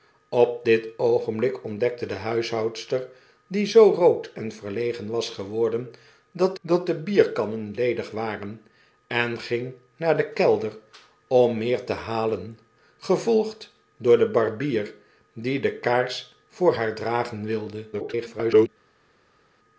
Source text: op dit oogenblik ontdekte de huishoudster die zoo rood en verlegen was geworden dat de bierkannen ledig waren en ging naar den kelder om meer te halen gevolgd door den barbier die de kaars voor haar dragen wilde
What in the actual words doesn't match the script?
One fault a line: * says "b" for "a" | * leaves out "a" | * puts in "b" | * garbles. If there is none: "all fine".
* puts in "dat"
* garbles